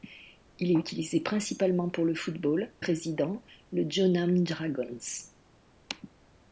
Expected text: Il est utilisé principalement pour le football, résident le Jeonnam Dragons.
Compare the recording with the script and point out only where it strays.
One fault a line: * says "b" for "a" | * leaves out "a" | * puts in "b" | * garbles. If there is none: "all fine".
all fine